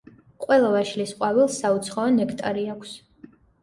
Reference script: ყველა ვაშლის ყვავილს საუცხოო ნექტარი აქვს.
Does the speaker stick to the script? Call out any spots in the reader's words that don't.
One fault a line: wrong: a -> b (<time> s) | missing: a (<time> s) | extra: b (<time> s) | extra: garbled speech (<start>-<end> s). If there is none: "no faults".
no faults